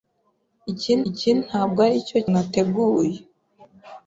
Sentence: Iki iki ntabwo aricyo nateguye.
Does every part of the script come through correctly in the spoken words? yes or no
yes